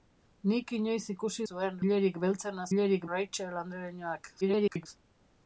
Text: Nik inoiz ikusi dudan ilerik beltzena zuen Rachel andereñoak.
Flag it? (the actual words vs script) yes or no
yes